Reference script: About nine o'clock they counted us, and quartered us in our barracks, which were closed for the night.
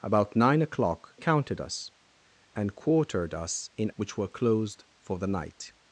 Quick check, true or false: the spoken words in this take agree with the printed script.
false